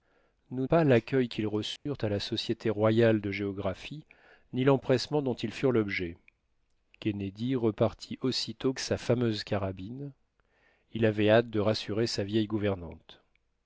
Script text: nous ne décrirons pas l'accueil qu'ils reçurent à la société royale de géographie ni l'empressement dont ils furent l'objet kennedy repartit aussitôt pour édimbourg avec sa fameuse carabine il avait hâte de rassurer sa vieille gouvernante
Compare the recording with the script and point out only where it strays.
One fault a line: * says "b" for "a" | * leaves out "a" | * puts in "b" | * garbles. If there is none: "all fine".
* leaves out "ne décrirons"
* leaves out "pour édimbourg avec"